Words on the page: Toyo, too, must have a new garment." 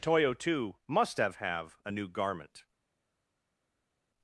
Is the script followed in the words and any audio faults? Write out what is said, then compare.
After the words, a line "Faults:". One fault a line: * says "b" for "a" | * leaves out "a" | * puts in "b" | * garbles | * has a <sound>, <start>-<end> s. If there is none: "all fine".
Toyo, too, must have have a new garment."
Faults:
* puts in "have"